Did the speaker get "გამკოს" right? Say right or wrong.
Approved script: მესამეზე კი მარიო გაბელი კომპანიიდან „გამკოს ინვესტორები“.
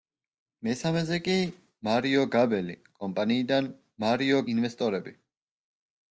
wrong